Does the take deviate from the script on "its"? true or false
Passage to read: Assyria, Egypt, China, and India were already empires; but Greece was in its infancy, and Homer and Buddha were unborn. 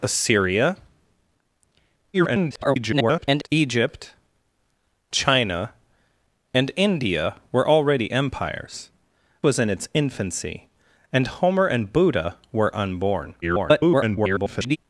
false